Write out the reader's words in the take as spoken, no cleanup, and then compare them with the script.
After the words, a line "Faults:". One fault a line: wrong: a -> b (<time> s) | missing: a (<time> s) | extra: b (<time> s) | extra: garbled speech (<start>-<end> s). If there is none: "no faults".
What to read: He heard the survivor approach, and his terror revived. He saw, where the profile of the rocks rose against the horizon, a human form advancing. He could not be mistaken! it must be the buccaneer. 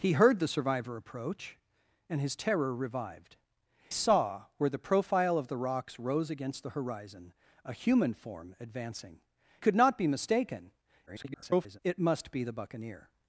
He heard the survivor approach, and his terror revived. Saw, where the profile of the rocks rose against the horizon, a human form advancing. Could not be mistaken! [garbled] it must be the buccaneer.
Faults:
missing: He (3.4 s)
missing: He (9.2 s)
extra: garbled speech (11.1-11.8 s)